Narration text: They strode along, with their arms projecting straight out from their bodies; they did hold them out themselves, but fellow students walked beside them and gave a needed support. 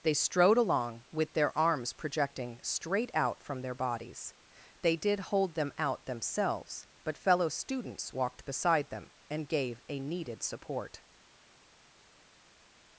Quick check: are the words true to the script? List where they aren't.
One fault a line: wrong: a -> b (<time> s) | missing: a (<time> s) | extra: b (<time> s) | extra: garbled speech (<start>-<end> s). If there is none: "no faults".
no faults